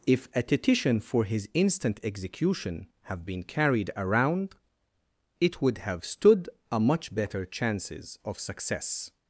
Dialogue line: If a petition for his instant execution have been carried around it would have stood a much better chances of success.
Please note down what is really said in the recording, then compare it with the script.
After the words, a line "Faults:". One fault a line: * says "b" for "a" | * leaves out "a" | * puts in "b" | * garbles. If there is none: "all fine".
If a petition for his instant execution have been carried around it would have stood a much better chances of success.
Faults:
all fine